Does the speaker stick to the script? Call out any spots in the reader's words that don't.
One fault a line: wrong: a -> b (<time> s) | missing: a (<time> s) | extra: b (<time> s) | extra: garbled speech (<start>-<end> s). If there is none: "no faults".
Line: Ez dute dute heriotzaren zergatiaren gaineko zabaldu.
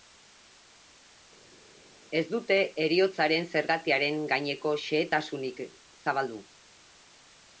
missing: dute (2.6 s)
extra: xehetasunik (4.8 s)